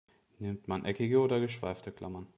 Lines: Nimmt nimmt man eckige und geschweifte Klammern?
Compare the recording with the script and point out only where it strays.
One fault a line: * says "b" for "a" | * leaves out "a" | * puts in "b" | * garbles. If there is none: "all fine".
* leaves out "nimmt"
* says "oder" for "und"